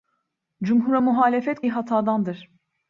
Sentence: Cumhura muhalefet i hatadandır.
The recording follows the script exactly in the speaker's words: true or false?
true